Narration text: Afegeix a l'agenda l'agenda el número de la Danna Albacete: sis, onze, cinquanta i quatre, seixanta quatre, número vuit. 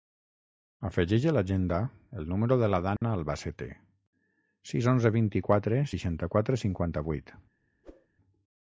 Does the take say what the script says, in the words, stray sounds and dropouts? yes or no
no